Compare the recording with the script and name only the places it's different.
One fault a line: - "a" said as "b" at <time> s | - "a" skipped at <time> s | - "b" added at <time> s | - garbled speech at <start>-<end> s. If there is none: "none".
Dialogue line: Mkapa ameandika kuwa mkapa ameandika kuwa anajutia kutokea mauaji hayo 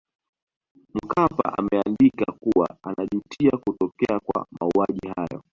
- "mkapa ameandika kuwa" skipped at 2.8 s
- "kwa" added at 4.2 s